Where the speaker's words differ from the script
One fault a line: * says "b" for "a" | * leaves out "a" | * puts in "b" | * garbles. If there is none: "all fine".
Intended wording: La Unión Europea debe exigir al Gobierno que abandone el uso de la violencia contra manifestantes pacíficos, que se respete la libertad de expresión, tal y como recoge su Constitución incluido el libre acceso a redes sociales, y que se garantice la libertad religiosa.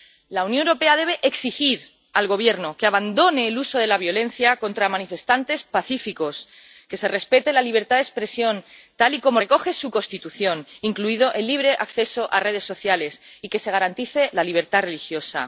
all fine